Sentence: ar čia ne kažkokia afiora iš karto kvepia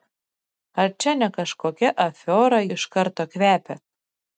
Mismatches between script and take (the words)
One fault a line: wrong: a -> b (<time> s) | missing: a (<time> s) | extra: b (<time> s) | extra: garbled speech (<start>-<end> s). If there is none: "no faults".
no faults